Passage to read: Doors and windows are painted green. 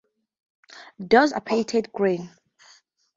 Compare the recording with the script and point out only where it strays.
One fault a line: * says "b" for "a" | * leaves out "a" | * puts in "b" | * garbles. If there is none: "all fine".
* leaves out "and windows"